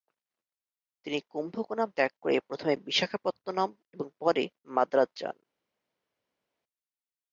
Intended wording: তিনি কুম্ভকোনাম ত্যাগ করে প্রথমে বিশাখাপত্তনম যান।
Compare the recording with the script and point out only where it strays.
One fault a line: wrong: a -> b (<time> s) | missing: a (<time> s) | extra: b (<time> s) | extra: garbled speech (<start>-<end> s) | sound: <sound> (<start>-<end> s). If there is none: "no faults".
extra: এবং পরে মাদ্রাজ (3.9 s)